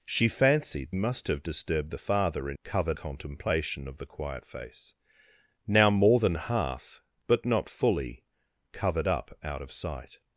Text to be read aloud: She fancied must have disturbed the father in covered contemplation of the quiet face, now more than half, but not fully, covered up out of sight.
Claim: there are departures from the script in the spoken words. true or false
false